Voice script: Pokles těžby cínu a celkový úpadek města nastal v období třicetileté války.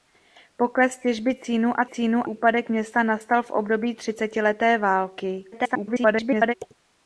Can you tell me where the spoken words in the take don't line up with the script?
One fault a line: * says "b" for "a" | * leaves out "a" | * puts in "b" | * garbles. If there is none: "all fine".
* says "cínu" for "celkový"
* garbles